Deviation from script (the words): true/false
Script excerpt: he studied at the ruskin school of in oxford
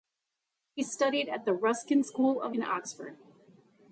false